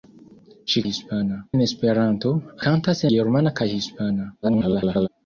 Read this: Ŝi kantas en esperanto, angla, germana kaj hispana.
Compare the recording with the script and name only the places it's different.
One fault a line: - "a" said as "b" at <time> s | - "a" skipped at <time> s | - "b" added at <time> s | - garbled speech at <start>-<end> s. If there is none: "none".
- "kantas" said as "hispana" at 0.9 s
- "angla" said as "kantas" at 2.6 s
- garbled speech at 4.4-5.1 s